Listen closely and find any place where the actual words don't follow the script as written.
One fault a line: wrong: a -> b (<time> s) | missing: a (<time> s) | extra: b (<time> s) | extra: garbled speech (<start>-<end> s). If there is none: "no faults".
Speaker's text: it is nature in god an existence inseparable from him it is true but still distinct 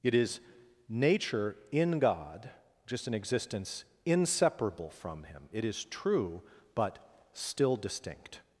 extra: just (2.9 s)